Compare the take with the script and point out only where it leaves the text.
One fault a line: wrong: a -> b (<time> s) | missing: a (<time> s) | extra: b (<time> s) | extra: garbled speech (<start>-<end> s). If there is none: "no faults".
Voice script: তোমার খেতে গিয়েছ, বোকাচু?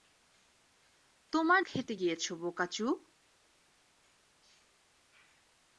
no faults